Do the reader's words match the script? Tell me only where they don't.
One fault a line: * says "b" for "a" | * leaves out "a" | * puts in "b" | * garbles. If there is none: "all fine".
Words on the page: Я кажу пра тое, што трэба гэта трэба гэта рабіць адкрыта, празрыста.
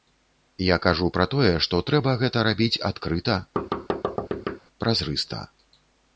* leaves out "трэба гэта"